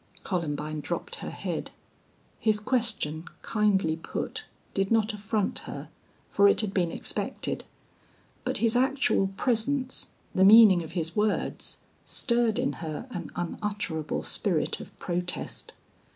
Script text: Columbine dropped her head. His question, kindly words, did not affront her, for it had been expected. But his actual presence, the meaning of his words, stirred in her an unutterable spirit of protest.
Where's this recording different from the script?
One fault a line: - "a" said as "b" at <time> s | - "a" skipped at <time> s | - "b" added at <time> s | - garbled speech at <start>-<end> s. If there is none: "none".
- "words" said as "put" at 4.0 s